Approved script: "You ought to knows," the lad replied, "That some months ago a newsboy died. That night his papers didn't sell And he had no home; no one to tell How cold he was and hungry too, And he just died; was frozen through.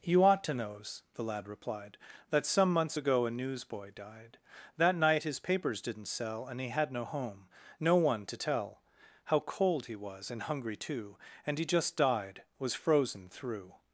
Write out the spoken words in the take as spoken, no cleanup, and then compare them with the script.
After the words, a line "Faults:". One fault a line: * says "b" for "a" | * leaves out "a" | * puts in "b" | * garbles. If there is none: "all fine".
"You ought to knows," the lad replied, "That some months ago a newsboy died. That night his papers didn't sell And he had no home; no one to tell How cold he was and hungry too, And he just died; was frozen through.
Faults:
all fine